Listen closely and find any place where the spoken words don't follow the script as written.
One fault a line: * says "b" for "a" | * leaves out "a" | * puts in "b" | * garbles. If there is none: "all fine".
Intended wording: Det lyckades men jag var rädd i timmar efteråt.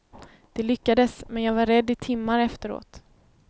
all fine